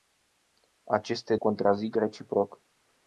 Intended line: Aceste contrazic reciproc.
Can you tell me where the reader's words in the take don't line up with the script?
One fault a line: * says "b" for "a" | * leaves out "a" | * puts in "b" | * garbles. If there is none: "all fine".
all fine